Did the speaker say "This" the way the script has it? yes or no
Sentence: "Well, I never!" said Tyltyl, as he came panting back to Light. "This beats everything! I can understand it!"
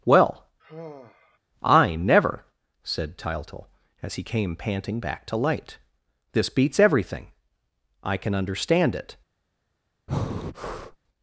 yes